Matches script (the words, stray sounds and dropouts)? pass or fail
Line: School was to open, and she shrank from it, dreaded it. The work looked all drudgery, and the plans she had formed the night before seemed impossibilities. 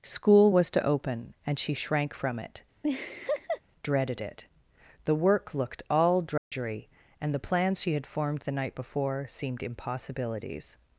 fail